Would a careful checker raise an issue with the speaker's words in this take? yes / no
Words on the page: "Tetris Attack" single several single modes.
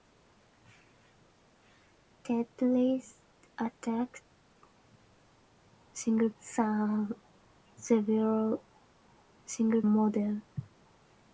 no